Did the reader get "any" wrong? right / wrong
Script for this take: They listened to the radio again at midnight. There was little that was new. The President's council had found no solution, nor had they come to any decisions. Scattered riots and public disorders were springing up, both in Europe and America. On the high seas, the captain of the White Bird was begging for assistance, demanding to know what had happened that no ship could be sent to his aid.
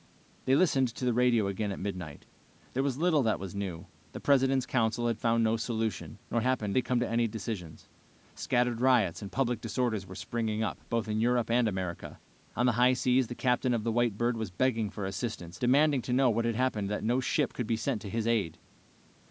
right